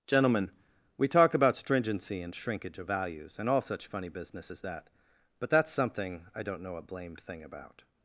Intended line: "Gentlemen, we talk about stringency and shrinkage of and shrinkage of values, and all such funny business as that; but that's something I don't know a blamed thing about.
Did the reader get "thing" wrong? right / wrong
right